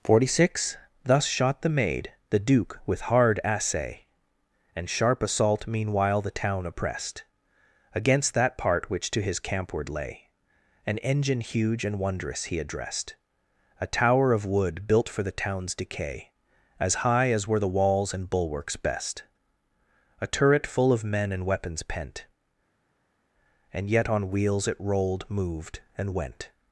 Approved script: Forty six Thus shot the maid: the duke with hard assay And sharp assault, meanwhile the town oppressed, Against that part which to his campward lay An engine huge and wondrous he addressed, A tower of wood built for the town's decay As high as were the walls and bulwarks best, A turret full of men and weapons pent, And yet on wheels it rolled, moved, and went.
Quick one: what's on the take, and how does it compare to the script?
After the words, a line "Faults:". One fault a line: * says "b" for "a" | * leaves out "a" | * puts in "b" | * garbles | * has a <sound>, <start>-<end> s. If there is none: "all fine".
Forty six Thus shot the maid: the duke with hard assay And sharp assault, meanwhile the town oppressed, Against that part which to his campward lay An engine huge and wondrous he addressed, A tower of wood built for the town's decay As high as were the walls and bulwarks best, A turret full of men and weapons pent, And yet on wheels it rolled, moved, and went.
Faults:
all fine